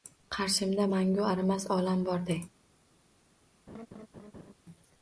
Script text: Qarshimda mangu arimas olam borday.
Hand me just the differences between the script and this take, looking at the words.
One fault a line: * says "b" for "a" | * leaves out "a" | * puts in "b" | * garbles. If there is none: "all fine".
all fine